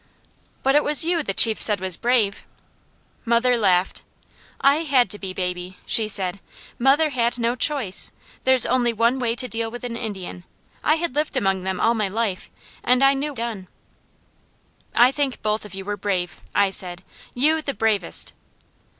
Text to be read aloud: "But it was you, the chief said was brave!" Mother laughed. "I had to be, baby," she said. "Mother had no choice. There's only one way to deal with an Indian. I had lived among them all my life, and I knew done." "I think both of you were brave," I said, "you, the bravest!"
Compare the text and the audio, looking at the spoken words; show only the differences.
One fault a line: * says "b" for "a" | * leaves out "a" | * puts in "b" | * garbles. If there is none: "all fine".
all fine